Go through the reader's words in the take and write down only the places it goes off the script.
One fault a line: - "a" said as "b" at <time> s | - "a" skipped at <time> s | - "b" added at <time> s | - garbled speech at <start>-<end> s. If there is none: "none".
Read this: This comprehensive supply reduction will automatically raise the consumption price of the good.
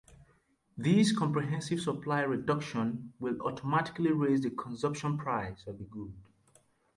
none